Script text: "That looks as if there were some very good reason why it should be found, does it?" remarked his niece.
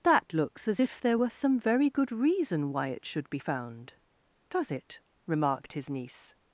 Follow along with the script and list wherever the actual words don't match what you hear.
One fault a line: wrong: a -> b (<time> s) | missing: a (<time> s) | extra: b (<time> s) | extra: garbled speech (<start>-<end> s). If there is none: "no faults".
no faults